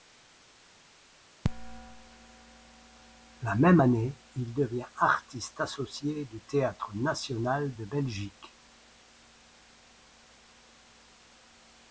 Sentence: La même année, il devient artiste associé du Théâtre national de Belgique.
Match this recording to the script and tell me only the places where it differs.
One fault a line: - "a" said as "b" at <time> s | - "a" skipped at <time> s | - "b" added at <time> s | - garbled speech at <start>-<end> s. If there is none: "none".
none